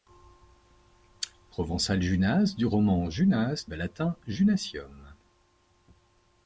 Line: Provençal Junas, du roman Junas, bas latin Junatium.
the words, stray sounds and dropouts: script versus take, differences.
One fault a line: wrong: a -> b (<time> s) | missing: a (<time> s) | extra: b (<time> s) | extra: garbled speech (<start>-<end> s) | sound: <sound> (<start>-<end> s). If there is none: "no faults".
no faults